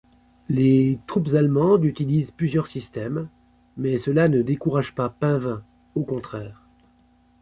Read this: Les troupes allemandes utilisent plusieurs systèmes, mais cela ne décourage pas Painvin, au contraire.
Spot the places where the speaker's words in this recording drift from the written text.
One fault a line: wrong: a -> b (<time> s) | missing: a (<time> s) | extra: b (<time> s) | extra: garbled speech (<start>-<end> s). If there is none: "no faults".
no faults